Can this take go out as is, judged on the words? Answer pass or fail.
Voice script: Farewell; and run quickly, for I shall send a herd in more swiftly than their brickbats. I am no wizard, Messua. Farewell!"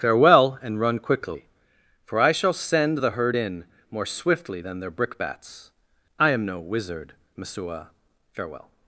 fail